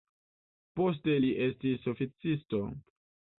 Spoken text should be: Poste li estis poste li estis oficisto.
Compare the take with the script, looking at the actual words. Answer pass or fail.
fail